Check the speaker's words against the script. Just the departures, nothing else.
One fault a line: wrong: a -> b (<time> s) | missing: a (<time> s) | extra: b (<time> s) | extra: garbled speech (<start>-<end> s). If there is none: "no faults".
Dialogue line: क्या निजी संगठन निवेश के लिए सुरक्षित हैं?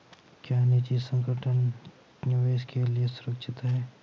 no faults